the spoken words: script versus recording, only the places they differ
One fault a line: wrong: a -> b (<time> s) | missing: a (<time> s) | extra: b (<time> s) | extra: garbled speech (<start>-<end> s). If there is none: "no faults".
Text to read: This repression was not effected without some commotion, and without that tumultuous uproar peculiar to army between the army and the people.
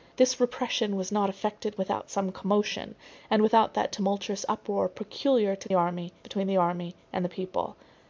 no faults